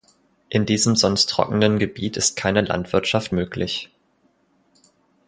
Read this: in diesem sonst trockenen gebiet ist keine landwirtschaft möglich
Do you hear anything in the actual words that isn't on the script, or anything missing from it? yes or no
no